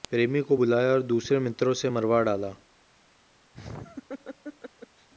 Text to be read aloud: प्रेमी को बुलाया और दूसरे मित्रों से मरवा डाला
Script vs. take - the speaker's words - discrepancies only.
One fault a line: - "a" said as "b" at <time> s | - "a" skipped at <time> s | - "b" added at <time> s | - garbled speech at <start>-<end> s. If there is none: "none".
none